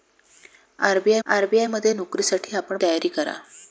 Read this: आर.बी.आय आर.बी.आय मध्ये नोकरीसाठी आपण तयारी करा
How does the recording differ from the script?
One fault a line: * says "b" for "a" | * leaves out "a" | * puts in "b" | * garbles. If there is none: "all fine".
all fine